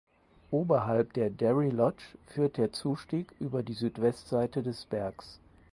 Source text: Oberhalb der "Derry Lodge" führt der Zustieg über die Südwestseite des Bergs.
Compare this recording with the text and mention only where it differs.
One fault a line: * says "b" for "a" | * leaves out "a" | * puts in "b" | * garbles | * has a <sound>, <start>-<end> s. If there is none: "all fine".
all fine